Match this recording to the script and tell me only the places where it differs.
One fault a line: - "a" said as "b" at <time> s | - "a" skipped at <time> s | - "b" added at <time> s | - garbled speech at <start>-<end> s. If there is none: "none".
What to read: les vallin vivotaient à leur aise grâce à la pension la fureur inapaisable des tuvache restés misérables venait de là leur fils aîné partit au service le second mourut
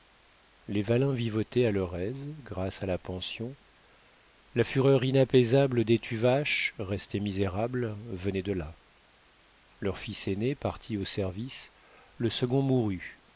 none